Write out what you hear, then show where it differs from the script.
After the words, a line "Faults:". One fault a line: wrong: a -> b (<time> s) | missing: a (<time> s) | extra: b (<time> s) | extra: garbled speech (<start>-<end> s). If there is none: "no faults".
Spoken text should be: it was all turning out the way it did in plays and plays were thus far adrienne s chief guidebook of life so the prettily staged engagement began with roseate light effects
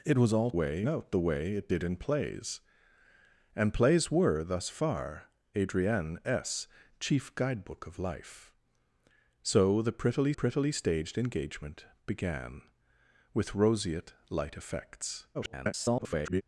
it was all way out the way it did in plays and plays were thus far adrienne s chief guidebook of life so the prettily prettily staged engagement began with roseate light effects [garbled]
Faults:
wrong: turning -> way (0.5 s)
extra: prettily (10.3 s)
extra: garbled speech (15.3-16.4 s)